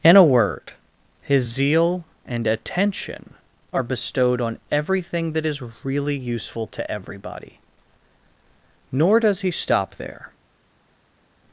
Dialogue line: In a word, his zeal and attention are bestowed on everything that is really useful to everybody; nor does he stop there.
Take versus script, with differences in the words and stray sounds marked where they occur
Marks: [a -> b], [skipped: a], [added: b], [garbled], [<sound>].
In a word, his zeal and attention are bestowed on everything that is really useful to everybody; nor does he stop there.